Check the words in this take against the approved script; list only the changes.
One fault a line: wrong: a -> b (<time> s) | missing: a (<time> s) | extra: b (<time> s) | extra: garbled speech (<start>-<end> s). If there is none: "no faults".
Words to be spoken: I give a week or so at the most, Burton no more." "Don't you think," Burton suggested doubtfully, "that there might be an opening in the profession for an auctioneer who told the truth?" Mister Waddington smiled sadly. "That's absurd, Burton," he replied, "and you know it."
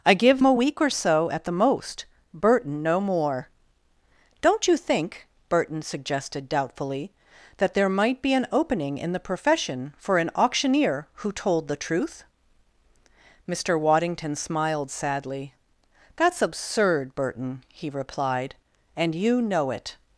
no faults